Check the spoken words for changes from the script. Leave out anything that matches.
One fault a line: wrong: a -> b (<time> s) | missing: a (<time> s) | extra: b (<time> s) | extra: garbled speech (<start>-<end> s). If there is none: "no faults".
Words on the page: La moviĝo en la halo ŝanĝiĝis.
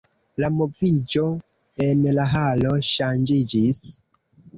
no faults